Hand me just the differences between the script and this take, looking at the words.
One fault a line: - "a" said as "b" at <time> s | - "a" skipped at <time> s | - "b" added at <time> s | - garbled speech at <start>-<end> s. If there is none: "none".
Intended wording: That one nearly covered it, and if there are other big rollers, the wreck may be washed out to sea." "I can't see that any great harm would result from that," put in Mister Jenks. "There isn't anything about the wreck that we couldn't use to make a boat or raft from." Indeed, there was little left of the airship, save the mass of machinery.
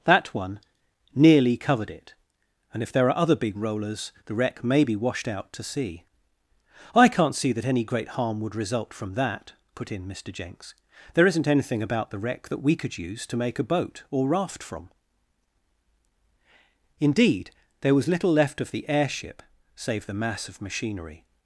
- "couldn't" said as "could" at 12.8 s